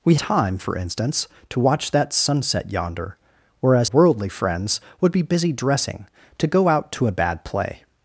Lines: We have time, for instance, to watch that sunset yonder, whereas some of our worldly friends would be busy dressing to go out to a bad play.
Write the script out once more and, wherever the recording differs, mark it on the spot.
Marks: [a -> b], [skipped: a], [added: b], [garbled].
We [skipped: have] time, for instance, to watch that sunset yonder, whereas [skipped: some of our] worldly friends would be busy dressing to go out to a bad play.